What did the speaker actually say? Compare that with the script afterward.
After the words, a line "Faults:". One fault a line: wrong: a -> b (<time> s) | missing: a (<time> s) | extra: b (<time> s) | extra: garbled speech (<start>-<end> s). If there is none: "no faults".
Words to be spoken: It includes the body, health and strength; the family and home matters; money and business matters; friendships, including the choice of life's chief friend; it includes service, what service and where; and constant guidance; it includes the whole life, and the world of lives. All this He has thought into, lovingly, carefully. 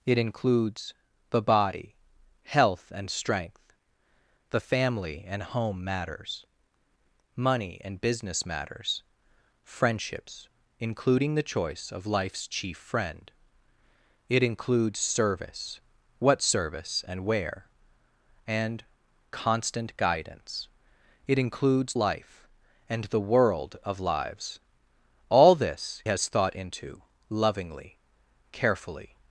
It includes the body, health and strength; the family and home matters; money and business matters; friendships, including the choice of life's chief friend; it includes service, what service and where; and constant guidance; it includes life, and the world of lives. All this Has thought into, lovingly, carefully.
Faults:
missing: the whole (21.9 s)
missing: He (26.0 s)